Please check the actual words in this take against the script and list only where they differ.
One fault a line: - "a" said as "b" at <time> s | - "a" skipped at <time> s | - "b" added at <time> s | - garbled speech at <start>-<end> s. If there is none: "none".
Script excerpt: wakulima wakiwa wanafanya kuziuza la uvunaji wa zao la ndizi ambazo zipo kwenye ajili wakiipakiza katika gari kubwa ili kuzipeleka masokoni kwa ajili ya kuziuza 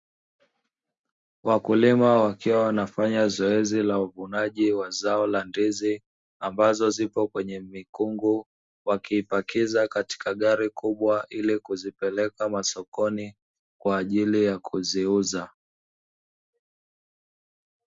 - "kuziuza" said as "zoezi" at 3.3 s
- "ajili" said as "mikungu" at 7.6 s